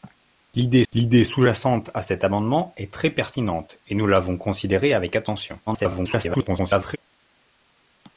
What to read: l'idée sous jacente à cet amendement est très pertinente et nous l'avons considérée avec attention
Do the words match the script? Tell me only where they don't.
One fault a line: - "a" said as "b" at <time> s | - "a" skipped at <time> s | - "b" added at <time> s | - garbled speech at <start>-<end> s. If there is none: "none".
- "l'idée" added at 0.9 s
- garbled speech at 5.7-7.0 s